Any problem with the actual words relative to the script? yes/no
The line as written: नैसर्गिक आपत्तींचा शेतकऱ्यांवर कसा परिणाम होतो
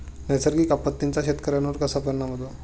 no